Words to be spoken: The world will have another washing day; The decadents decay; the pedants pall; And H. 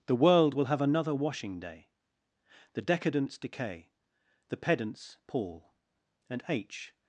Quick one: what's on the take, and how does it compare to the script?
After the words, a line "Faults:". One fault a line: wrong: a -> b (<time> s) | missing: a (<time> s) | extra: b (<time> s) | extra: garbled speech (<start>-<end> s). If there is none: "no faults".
The world will have another washing day; The decadents decay; the pedants pall; And H.
Faults:
no faults